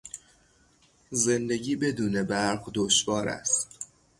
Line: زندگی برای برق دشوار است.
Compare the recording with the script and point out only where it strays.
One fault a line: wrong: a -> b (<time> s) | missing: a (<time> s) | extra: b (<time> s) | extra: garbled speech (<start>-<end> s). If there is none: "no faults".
wrong: برای -> بدون (1.7 s)